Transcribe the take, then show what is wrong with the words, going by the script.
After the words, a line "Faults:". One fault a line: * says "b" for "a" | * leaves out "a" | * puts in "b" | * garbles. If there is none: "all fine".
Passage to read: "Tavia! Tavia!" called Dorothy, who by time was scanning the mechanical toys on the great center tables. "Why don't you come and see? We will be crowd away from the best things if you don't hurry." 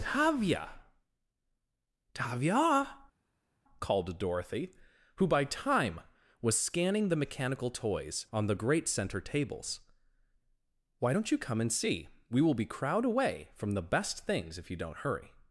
"Tavia! Tavia!" called Dorothy, who by time was scanning the mechanical toys on the great center tables. "Why don't you come and see? We will be crowd away from the best things if you don't hurry."
Faults:
all fine